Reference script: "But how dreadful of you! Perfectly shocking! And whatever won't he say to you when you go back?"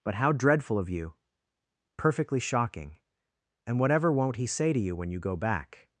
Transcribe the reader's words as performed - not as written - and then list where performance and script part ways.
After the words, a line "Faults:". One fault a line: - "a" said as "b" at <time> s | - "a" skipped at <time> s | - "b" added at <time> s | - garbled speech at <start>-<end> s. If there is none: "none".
"But how dreadful of you! Perfectly shocking! And whatever won't he say to you when you go back?"
Faults:
none